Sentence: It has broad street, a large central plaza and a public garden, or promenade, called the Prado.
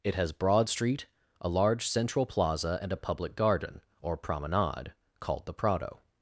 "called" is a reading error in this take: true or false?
false